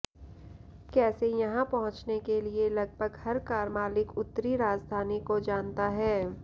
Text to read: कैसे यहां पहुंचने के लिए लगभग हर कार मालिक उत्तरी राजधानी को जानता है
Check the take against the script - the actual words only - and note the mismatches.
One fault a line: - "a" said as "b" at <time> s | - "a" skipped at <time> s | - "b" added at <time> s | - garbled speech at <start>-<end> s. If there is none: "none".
none